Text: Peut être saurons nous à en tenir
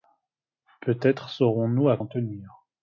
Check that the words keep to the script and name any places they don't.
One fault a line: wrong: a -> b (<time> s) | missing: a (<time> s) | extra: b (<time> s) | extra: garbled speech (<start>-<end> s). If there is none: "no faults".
no faults